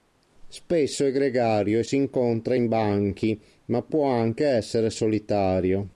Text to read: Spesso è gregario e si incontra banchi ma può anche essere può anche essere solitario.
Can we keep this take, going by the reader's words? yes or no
no